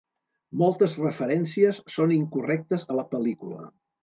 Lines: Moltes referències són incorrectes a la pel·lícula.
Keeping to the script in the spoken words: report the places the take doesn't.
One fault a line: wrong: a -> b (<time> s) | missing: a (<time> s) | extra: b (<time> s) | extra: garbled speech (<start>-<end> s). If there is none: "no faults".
no faults